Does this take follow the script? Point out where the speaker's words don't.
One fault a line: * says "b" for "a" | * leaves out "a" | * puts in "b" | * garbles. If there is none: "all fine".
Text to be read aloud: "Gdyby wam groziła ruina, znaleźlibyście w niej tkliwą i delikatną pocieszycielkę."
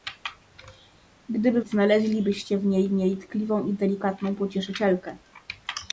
* leaves out "wam groziła ruina"
* puts in "niej"